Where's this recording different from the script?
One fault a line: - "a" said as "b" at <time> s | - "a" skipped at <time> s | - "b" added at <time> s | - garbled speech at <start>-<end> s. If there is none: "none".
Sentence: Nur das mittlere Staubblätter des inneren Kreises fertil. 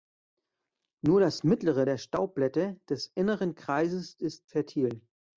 - "der" added at 1.8 s
- "ist" added at 4.1 s